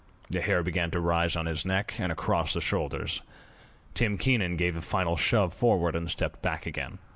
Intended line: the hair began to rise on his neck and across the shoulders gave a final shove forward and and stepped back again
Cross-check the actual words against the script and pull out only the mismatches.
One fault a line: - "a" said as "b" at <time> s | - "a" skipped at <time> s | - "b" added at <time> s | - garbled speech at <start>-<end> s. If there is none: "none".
- "tim keenan" added at 3.9 s
- "and" skipped at 6.1 s